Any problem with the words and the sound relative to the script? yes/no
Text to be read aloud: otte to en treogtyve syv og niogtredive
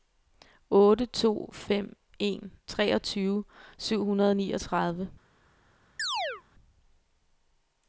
yes